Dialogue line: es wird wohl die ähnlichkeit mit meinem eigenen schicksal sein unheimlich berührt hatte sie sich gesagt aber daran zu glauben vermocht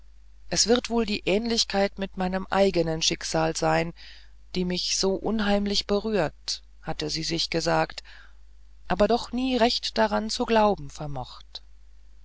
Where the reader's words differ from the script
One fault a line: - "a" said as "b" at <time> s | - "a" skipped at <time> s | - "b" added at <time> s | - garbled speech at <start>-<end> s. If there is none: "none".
- "die mich so" added at 4.5 s
- "doch nie recht" added at 9.0 s